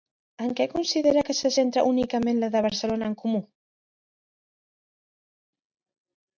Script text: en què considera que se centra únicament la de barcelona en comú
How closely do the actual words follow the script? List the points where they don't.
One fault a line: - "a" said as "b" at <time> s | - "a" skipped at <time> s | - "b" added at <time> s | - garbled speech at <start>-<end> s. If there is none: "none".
none